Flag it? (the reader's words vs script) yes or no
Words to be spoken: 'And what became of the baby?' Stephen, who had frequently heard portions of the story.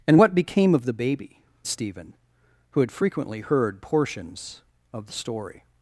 no